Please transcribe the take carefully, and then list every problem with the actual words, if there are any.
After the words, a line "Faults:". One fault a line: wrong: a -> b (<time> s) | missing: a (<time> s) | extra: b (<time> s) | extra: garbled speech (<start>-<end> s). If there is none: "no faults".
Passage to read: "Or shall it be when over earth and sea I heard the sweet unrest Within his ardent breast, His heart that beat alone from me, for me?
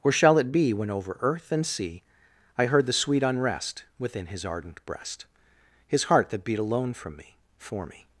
"Or shall it be when over earth and sea I heard the sweet unrest Within his ardent breast, His heart that beat alone from me, for me?
Faults:
no faults